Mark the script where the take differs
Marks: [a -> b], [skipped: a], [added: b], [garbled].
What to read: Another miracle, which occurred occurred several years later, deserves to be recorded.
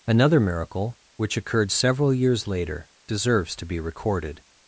Another miracle, which occurred [skipped: occurred] several years later, deserves to be recorded.